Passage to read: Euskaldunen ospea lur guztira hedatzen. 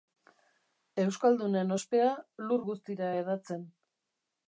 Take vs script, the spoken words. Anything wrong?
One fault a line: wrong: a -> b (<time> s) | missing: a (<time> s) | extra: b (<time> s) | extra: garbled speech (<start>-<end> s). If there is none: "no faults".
no faults